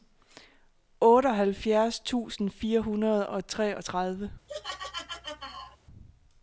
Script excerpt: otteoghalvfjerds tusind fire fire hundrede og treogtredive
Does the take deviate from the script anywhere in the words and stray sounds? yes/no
yes